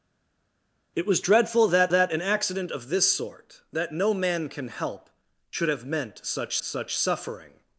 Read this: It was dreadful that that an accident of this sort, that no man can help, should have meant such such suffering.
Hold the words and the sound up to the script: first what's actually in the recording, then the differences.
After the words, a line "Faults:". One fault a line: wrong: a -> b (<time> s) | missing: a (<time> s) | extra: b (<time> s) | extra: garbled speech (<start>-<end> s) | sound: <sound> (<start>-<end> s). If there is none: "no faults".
It was dreadful that that an accident of this sort, that no man can help, should have meant such such suffering.
Faults:
no faults